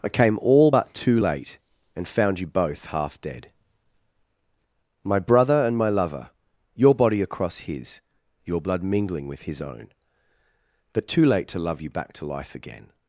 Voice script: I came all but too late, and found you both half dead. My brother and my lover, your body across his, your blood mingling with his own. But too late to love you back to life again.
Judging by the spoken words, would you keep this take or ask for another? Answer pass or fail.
pass